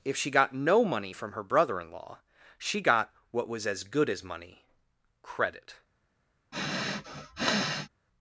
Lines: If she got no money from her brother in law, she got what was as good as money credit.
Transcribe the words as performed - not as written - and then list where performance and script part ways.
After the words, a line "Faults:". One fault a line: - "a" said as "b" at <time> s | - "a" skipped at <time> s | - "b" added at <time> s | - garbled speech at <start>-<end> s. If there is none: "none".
If she got no money from her brother in law, she got what was as good as money credit.
Faults:
none